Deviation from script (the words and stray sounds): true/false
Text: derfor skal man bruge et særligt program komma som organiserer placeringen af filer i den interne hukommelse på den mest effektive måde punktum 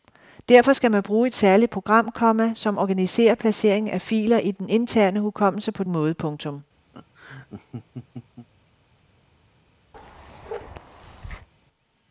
true